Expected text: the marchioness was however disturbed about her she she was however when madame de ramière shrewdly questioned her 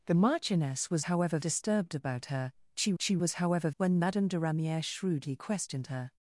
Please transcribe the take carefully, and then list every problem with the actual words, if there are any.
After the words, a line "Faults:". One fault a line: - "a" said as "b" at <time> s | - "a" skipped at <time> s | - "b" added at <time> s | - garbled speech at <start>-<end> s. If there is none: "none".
the marchioness was however disturbed about her she she was however when madame de ramière shrewdly questioned her
Faults:
none